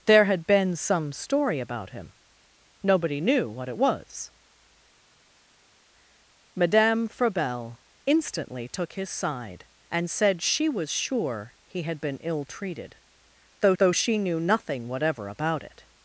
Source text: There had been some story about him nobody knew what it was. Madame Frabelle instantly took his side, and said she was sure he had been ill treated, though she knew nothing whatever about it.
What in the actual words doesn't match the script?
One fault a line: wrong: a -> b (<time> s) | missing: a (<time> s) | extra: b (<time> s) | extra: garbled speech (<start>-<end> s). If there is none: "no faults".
extra: though (13.8 s)